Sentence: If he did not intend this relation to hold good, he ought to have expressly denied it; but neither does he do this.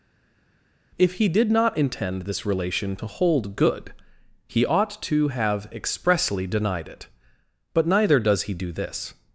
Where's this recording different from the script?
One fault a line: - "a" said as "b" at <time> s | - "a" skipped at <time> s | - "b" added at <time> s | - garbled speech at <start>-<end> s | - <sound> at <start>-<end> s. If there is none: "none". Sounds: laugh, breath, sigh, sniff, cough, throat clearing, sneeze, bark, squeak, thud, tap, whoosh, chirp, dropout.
none